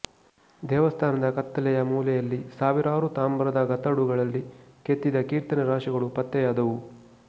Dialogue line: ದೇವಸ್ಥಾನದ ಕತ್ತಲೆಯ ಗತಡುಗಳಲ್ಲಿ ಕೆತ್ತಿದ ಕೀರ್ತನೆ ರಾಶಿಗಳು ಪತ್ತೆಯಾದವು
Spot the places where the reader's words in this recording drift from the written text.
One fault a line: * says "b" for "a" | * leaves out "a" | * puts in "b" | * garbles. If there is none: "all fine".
* puts in "ಮೂಲೆಯಲ್ಲಿ ಸಾವಿರಾರು ತಾಮ್ರದ"